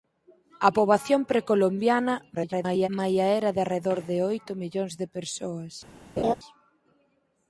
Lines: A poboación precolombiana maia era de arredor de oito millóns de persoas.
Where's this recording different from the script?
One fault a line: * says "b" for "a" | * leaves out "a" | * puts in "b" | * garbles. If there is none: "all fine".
* garbles